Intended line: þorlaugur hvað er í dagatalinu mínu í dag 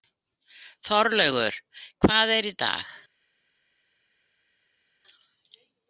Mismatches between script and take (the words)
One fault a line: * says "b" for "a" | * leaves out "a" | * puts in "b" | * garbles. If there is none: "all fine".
* leaves out "dagatalinu mínu"